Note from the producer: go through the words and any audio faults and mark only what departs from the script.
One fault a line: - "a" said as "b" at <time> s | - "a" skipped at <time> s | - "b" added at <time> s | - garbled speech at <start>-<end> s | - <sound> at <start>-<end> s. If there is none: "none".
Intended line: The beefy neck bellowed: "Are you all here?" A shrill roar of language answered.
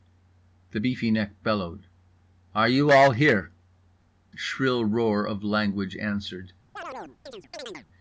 - "A" skipped at 3.5 s
- chirp at 6.8-7.9 s